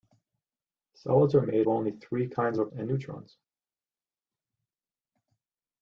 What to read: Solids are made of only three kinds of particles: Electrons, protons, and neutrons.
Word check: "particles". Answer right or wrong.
wrong